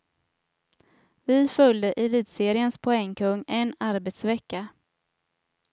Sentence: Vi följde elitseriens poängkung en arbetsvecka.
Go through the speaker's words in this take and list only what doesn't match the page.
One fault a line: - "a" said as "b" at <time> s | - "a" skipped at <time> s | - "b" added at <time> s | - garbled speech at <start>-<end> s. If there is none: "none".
none